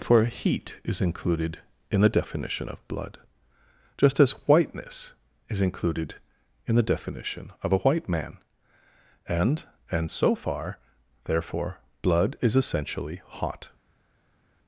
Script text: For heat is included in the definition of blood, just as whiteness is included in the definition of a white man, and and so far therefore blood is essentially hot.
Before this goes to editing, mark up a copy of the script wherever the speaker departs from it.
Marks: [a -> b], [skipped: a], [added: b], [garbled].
For heat is included in the definition of blood, just as whiteness is included in the definition of a white man, and and so far therefore blood is essentially hot.